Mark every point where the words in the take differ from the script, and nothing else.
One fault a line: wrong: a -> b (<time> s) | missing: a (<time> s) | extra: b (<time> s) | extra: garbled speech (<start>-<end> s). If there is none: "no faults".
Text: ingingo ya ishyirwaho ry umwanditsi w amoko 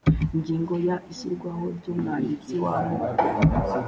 no faults